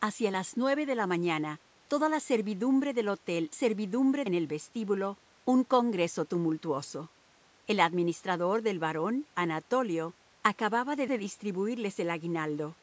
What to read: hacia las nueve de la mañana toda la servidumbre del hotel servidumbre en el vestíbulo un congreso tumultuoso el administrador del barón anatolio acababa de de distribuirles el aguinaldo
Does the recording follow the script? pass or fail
pass